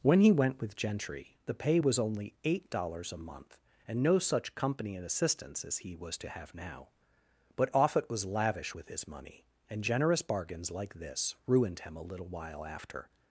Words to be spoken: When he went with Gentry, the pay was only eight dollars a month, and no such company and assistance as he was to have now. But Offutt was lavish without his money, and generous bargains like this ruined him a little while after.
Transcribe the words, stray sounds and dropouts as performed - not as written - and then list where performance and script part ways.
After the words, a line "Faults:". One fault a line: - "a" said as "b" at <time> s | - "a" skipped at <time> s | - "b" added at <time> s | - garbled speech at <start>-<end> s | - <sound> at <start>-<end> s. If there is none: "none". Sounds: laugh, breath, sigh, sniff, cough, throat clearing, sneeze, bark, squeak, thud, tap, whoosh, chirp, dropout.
When he went with Gentry, the pay was only eight dollars a month, and no such company and assistance as he was to have now. But Offutt was lavish with his money, and generous bargains like this ruined him a little while after.
Faults:
- "without" said as "with" at 8.7 s